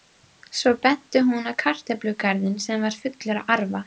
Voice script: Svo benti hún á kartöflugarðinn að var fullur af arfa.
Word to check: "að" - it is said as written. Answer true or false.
false